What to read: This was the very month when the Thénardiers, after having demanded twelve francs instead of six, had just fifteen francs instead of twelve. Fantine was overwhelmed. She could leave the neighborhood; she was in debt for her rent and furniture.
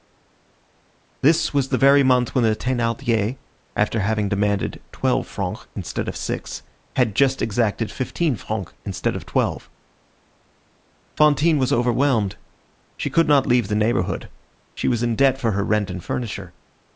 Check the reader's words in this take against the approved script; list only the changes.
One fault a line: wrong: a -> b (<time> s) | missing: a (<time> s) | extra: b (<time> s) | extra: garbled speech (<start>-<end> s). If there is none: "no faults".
extra: exacted (7.4 s)
extra: not (13.3 s)